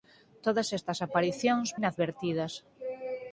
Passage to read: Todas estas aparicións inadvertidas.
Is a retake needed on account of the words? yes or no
no